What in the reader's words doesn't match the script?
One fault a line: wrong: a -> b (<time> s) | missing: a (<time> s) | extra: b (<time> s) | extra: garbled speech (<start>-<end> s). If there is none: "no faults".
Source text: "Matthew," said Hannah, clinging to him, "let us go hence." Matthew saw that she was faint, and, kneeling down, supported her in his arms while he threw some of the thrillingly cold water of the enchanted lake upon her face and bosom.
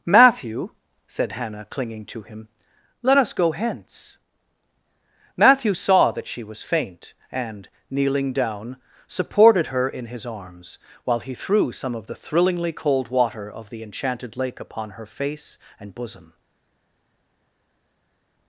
no faults